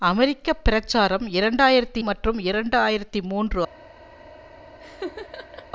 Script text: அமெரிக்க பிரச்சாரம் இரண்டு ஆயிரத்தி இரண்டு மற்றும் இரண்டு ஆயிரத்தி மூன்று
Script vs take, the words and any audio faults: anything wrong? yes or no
yes